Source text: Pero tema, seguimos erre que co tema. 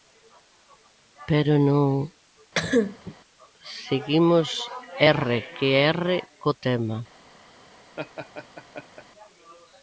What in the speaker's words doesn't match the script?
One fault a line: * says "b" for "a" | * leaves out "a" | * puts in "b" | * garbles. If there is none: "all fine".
* says "non" for "tema"
* puts in "erre"